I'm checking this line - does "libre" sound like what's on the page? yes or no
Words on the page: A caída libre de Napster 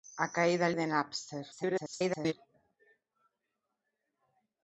no